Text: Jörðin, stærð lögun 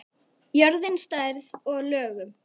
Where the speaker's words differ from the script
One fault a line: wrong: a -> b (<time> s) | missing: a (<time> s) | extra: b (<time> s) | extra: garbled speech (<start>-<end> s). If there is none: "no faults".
extra: og (1.7 s)